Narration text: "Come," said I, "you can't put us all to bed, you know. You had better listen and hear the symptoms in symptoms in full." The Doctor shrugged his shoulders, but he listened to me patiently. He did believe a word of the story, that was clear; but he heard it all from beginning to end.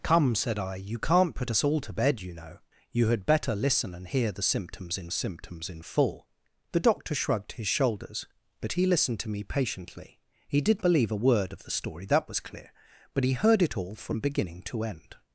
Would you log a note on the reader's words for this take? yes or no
no